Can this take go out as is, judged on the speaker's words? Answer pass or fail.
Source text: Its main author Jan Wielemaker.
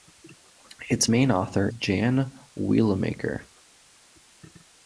pass